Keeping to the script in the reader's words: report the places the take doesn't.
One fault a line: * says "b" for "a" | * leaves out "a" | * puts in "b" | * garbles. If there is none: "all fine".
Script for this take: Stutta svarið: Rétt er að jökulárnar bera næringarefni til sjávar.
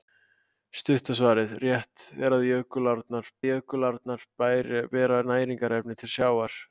* puts in "jökulárnar"